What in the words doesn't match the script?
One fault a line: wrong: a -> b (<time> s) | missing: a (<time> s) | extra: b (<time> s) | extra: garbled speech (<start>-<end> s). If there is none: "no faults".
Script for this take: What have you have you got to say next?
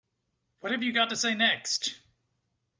missing: have you (0.9 s)